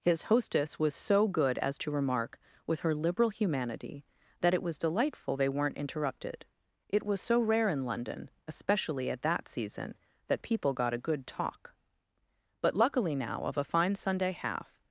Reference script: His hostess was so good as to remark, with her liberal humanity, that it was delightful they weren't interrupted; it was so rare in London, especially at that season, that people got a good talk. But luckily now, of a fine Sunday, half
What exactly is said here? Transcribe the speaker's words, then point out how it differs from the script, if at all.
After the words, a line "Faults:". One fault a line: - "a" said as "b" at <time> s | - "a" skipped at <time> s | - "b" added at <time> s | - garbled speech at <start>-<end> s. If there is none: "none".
His hostess was so good as to remark, with her liberal humanity, that it was delightful they weren't interrupted; it was so rare in London, especially at that season, that people got a good talk. But luckily now, of a fine Sunday, half
Faults:
none